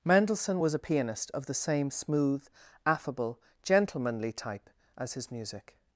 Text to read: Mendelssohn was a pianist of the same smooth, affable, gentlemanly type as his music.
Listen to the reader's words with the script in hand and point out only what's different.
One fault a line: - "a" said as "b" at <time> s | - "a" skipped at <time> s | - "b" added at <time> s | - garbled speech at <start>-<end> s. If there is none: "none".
none